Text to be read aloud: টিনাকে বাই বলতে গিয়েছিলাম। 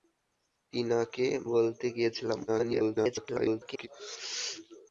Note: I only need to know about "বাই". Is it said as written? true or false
false